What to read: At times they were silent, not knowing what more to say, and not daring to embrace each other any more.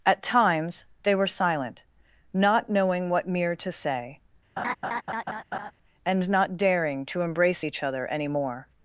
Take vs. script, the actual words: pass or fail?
fail